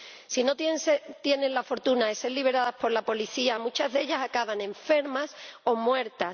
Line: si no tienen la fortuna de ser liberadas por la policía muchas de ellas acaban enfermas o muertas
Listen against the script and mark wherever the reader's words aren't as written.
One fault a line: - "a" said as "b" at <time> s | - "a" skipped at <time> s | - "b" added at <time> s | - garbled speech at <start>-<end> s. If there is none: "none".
none